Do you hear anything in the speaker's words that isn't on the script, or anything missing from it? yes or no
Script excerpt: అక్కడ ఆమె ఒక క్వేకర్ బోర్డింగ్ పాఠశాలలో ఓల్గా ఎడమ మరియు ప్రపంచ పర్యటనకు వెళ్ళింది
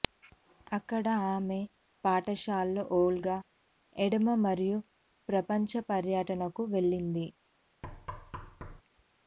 yes